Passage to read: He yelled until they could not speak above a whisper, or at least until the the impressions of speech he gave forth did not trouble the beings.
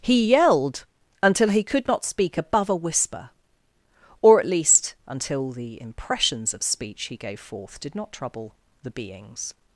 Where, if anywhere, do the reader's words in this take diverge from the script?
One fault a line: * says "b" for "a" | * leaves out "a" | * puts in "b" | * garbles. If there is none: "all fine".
* says "he" for "they"
* leaves out "the"